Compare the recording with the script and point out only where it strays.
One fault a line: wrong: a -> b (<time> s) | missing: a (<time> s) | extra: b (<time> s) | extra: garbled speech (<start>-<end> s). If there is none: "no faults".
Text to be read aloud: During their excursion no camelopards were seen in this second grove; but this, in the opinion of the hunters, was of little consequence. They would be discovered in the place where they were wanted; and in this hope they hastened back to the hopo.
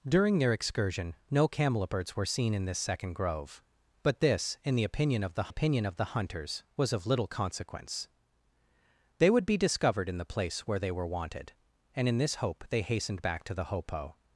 extra: opinion of the (5.5 s)